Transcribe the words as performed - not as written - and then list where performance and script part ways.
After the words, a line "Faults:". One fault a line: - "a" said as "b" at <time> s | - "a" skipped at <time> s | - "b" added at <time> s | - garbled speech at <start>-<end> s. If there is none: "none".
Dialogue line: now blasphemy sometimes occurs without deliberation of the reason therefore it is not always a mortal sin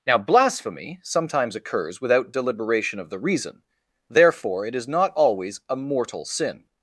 now blasphemy sometimes occurs without deliberation of the reason therefore it is not always a mortal sin
Faults:
none